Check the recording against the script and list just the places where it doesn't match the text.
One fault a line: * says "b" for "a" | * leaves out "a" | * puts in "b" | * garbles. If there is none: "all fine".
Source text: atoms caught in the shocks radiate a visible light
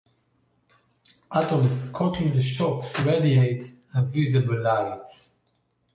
all fine